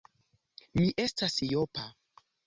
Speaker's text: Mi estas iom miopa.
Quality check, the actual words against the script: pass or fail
fail